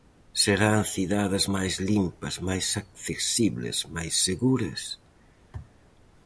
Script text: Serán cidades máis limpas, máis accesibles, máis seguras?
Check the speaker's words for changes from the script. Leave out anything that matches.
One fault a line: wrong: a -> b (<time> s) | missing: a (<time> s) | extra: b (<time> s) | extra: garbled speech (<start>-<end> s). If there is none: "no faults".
no faults